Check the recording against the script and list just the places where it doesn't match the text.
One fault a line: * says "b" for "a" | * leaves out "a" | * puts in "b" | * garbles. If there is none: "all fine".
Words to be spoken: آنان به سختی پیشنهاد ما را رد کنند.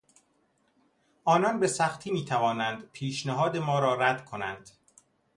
* puts in "میتوانند"